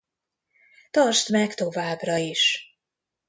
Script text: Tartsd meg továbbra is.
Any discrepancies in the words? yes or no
no